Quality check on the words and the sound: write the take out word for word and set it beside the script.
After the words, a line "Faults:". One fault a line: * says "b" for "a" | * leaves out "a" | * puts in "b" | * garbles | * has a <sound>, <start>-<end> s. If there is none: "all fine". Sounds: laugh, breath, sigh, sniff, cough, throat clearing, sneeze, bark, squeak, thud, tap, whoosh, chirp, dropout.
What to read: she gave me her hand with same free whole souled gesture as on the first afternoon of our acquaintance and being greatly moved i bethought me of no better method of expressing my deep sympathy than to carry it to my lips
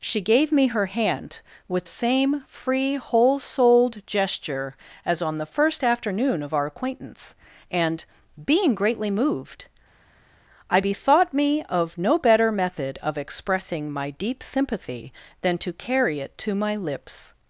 she gave me her hand with same free whole souled gesture as on the first afternoon of our acquaintance and being greatly moved i bethought me of no better method of expressing my deep sympathy than to carry it to my lips
Faults:
all fine